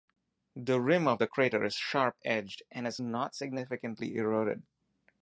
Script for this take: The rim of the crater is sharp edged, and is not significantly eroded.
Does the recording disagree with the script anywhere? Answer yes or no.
no